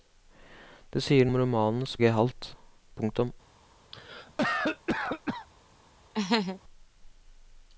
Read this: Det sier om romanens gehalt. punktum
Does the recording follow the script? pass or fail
pass